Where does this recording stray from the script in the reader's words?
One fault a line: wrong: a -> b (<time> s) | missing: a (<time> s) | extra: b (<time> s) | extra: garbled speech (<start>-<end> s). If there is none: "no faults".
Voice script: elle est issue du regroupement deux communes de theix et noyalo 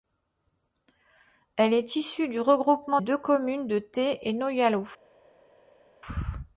no faults